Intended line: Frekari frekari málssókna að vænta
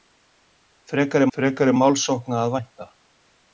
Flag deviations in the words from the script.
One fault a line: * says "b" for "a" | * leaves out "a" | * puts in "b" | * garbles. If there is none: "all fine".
all fine